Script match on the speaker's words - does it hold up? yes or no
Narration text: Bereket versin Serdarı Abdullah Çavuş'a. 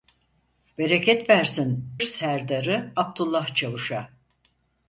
yes